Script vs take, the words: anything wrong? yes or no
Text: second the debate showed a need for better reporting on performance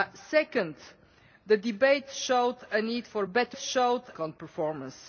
yes